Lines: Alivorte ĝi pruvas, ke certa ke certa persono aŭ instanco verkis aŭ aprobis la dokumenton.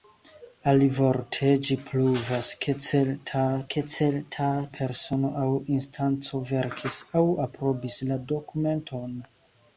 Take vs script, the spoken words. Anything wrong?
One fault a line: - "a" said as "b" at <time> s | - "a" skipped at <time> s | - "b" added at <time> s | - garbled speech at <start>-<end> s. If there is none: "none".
none